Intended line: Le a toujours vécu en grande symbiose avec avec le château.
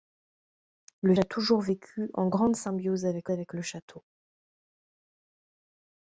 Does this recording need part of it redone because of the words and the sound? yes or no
no